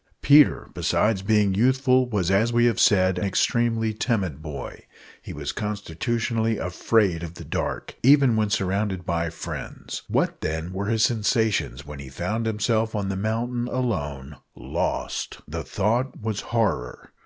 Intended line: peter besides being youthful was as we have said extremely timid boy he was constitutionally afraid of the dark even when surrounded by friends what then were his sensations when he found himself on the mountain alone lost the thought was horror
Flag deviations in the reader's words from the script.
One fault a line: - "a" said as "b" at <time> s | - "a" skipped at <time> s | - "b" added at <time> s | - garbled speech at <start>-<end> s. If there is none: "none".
none